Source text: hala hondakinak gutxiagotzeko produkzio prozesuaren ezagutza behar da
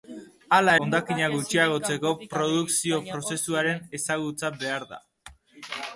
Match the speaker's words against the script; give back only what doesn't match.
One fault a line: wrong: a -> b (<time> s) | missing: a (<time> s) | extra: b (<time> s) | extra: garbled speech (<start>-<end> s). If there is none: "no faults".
no faults